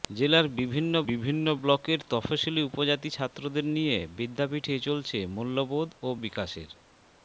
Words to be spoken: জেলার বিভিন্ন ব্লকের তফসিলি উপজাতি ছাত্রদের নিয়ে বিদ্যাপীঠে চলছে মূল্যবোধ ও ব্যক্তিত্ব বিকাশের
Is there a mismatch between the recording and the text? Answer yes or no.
yes